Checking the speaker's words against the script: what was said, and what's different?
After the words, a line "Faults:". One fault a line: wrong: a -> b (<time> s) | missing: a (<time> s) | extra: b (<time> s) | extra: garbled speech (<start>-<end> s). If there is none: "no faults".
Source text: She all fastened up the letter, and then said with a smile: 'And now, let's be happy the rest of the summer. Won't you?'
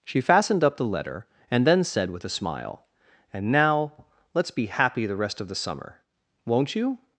She fastened up the letter, and then said with a smile: 'And now, let's be happy the rest of the summer. Won't you?'
Faults:
missing: all (0.2 s)